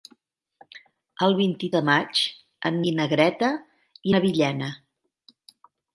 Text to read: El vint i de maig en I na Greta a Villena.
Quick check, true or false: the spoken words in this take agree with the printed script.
true